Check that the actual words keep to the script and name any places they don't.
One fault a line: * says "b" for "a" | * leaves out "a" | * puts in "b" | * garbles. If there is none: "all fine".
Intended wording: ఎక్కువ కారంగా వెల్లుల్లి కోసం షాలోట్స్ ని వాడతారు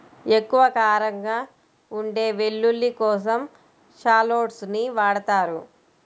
* puts in "ఉండే"